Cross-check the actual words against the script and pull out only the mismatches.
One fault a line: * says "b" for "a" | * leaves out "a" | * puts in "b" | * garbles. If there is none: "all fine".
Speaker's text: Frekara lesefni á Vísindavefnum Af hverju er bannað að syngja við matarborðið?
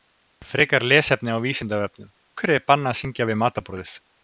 * leaves out "Af"